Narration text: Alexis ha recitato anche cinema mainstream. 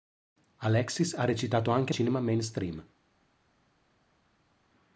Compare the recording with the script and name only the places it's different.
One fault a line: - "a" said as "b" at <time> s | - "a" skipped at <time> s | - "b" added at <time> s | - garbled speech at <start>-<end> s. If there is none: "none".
none